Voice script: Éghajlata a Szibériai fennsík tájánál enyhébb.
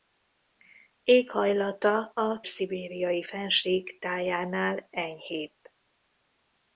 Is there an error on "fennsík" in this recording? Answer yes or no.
no